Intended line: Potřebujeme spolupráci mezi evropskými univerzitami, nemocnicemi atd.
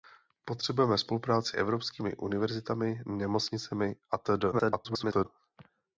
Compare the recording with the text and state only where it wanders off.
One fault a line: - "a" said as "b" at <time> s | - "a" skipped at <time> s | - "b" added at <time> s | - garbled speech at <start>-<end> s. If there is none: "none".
- "mezi" skipped at 1.6 s
- garbled speech at 4.5-5.3 s